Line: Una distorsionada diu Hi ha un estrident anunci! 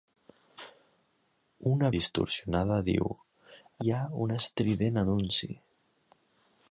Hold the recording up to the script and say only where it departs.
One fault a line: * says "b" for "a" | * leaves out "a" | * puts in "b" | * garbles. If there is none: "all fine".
all fine